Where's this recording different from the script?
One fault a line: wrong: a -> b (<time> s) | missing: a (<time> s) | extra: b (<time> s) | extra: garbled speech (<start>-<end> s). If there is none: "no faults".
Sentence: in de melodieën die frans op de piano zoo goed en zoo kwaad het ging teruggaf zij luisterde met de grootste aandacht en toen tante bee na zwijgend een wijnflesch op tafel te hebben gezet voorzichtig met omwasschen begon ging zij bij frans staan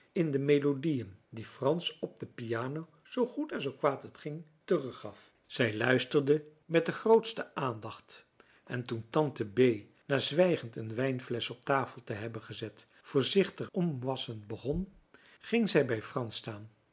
missing: met (13.7 s)